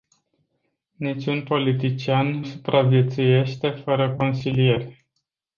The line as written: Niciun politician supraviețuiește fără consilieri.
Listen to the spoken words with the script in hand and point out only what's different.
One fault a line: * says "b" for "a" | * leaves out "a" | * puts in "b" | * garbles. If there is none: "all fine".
all fine